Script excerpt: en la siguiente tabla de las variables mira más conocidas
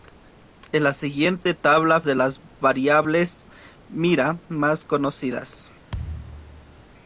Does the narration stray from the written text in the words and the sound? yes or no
yes